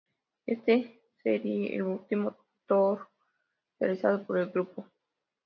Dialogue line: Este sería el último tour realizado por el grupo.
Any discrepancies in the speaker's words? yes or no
no